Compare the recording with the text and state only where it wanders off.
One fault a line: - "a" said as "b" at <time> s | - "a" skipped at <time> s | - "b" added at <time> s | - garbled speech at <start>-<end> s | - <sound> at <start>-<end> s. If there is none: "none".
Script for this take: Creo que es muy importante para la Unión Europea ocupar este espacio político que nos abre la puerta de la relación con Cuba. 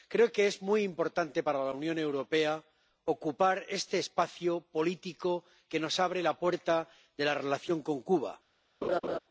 - laugh at 8.8-9.2 s